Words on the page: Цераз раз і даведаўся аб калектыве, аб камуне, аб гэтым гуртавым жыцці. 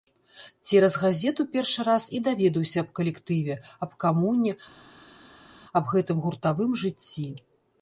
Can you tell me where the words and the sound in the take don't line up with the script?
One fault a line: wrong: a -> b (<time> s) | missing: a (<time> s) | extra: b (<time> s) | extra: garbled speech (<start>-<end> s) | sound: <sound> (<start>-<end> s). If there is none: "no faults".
extra: газету першы (1.0 s)